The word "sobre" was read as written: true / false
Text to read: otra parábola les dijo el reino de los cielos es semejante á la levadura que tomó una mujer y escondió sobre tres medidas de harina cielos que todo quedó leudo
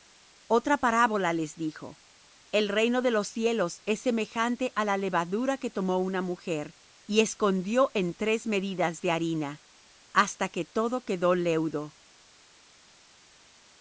false